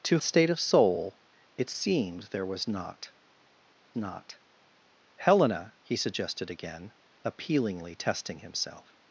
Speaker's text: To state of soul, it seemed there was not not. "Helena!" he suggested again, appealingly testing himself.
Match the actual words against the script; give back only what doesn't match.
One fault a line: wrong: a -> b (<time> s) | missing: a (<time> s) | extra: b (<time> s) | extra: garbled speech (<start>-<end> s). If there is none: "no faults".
no faults